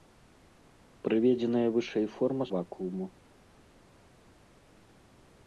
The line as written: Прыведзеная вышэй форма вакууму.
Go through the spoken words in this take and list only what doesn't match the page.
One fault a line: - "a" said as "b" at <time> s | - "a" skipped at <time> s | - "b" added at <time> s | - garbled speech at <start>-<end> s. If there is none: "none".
none